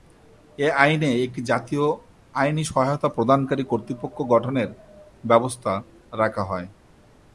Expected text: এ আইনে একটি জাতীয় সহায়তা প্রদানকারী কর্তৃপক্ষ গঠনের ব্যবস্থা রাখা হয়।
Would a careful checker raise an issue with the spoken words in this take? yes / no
yes